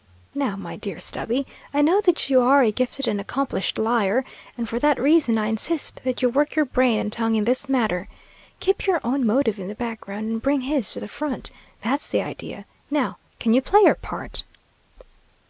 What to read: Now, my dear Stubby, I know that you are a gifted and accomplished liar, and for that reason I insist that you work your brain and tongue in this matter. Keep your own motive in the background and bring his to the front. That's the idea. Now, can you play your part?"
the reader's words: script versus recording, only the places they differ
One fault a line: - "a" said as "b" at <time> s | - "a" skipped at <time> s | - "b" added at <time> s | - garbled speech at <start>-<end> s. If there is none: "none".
none